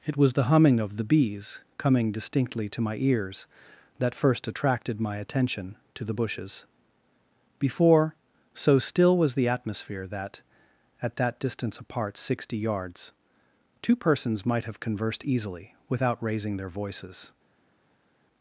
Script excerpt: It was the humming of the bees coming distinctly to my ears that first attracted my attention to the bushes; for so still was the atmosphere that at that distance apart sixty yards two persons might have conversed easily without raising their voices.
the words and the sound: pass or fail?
fail